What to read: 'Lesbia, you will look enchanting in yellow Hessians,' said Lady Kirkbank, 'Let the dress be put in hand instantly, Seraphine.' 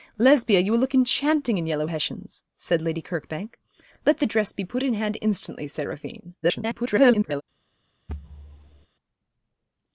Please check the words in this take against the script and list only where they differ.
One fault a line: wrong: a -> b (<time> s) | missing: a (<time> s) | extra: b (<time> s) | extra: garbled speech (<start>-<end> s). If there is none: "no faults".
extra: garbled speech (6.4-7.4 s)